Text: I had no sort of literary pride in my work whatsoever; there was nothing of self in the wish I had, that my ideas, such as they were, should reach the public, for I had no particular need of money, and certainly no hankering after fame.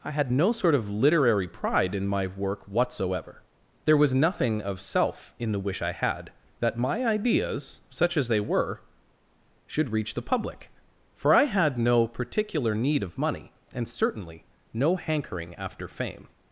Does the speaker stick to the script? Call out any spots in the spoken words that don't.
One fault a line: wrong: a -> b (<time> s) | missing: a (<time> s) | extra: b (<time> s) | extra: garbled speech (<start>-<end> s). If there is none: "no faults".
no faults